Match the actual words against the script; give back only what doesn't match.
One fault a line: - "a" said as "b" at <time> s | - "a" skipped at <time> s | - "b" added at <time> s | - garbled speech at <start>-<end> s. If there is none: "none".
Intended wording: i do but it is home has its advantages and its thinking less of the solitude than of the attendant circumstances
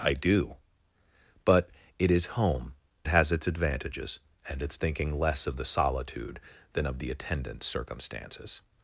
none